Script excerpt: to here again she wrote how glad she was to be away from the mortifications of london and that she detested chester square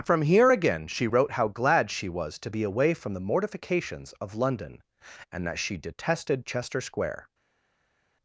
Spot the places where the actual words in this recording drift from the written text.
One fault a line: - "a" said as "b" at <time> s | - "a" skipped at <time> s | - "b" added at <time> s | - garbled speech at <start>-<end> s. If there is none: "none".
- "to" said as "from" at 0.1 s